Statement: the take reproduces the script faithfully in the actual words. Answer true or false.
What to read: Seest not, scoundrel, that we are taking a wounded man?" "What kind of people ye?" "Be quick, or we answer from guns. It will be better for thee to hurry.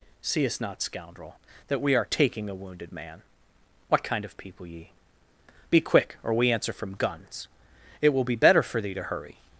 true